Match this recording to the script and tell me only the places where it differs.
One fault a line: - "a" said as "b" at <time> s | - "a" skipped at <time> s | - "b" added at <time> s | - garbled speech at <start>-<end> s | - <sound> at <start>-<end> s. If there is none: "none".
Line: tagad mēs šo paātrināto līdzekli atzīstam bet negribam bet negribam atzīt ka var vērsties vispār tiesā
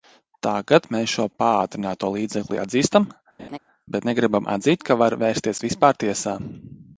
- laugh at 3.4-3.6 s
- "bet negribam" skipped at 4.5 s